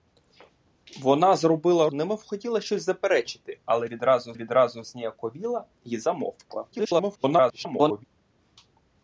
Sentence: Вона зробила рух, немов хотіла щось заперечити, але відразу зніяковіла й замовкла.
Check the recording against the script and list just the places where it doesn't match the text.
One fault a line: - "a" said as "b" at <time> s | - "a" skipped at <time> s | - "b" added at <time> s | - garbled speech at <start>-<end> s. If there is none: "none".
- "рух" skipped at 1.9 s
- "відразу" added at 4.3 s
- garbled speech at 6.7-8.0 s